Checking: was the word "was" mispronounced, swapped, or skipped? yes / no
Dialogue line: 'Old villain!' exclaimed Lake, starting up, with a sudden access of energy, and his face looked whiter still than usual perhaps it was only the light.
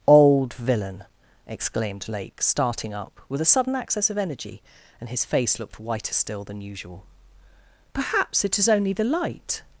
yes